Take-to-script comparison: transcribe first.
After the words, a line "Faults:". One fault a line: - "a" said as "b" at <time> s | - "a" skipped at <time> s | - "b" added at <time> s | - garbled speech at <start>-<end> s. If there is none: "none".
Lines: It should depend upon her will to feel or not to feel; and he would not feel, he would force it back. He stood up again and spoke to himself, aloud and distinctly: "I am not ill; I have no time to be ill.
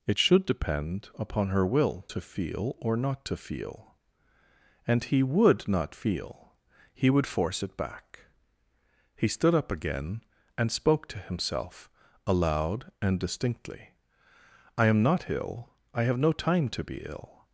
It should depend upon her will to feel or not to feel; and he would not feel, he would force it back. He stood up again and spoke to himself, aloud and distinctly: "I am not ill; I have no time to be ill.
Faults:
none